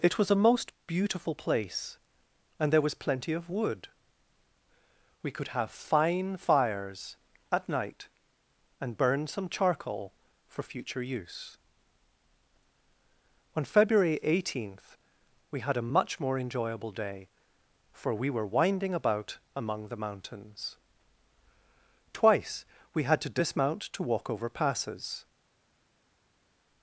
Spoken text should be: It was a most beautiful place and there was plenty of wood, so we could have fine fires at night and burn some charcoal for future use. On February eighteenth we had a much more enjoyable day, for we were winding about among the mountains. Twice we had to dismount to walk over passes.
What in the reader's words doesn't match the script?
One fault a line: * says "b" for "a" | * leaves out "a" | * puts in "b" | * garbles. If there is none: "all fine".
* leaves out "so"